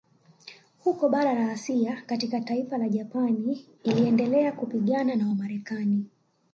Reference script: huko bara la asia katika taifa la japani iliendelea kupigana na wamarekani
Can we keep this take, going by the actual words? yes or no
yes